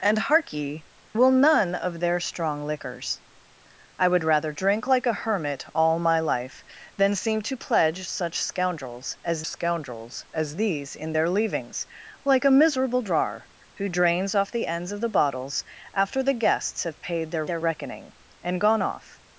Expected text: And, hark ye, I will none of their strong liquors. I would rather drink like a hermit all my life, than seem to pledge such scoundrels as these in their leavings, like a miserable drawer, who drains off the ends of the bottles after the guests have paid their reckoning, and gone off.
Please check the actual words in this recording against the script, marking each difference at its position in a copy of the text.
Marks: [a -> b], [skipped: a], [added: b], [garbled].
And, hark ye, [skipped: I] will none of their strong liquors. I would rather drink like a hermit all my life, than seem to pledge such scoundrels as [added: scoundrels as] these in their leavings, like a miserable drawer, who drains off the ends of the bottles after the guests have paid their [added: their] reckoning, and gone off.